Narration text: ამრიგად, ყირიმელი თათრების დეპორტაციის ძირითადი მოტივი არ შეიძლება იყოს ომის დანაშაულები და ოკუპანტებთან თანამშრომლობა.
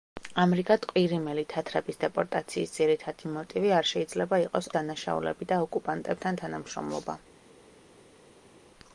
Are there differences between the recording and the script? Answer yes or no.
yes